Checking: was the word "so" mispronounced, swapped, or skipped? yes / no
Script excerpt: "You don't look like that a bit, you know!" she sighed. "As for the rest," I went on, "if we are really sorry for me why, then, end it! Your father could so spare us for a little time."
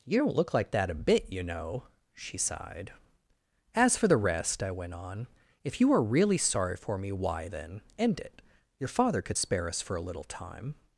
yes